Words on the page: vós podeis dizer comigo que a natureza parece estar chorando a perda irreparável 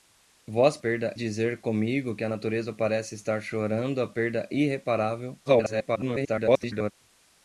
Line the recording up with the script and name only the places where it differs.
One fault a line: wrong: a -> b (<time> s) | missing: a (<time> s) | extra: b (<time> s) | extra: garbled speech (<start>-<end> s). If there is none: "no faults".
wrong: podeis -> perda (0.8 s)
extra: garbled speech (5.5-6.9 s)